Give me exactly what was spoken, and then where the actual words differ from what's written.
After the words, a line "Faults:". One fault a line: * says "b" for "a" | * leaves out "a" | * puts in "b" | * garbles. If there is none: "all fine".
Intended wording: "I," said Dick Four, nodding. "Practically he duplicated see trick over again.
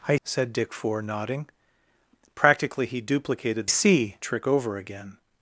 "I," said Dick Four, nodding. "Practically he duplicated see trick over again.
Faults:
all fine